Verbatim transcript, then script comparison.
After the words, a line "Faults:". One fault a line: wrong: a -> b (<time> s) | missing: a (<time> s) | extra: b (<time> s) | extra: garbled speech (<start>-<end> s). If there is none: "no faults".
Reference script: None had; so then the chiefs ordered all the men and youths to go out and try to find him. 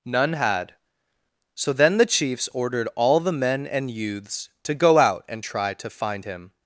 None had; so then the chiefs ordered all the men and youths to go out and try to find him.
Faults:
no faults